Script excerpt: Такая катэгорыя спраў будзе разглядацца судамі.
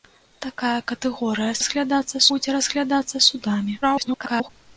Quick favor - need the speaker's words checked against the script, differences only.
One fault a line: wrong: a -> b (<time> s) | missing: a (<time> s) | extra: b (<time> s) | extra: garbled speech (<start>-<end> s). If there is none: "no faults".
wrong: спраў -> разглядацца (1.6 s)
extra: garbled speech (3.8-4.5 s)